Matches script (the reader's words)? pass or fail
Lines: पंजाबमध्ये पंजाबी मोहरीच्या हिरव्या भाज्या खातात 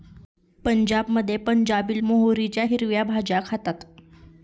pass